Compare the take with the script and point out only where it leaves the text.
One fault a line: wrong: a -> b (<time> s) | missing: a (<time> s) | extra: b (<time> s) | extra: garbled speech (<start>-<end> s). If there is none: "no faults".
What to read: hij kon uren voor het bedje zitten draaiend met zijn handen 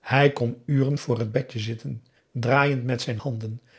no faults